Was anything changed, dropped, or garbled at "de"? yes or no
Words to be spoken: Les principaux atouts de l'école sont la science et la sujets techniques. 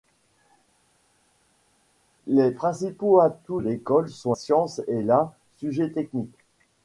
yes